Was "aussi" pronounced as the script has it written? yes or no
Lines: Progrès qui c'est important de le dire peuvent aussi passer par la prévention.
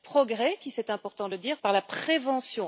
no